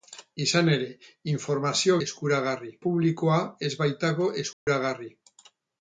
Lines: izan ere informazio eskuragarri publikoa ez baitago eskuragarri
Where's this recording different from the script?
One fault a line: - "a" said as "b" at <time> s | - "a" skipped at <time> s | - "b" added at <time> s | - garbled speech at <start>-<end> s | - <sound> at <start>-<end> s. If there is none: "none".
- dropout at 4.5-4.7 s